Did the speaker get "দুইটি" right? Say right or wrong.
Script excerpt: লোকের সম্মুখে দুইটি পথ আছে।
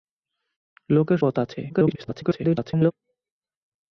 wrong